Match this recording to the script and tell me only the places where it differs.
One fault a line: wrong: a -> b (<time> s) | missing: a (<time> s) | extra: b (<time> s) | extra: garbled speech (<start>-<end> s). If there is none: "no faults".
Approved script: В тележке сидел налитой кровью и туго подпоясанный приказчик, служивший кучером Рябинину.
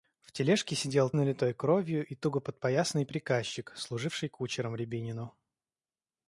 no faults